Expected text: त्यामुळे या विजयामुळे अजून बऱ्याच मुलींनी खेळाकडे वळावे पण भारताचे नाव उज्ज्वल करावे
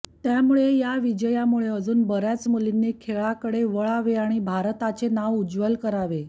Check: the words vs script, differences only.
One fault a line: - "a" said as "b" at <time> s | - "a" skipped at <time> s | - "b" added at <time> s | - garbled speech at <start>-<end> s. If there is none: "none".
- "पण" said as "आणि" at 4.2 s